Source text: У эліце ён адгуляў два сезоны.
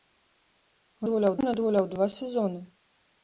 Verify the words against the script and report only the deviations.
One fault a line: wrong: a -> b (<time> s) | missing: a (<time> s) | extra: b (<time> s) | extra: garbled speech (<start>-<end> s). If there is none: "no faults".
wrong: эліце -> адгуляў (1.0 s)